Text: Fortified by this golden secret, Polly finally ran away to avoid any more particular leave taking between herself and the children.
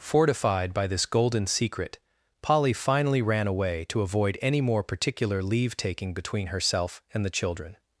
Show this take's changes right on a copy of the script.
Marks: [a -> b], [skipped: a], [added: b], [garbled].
Fortified by this golden secret, Polly finally ran away to avoid any more particular leave taking between herself and the children.